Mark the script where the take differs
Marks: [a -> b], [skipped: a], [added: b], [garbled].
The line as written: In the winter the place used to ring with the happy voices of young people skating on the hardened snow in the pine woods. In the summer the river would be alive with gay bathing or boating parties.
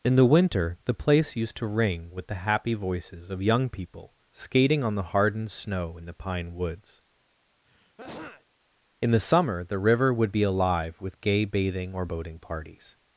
In the winter the place used to ring with the happy voices of young people skating on the hardened snow in the pine woods. In the summer the river would be alive with gay bathing or boating parties.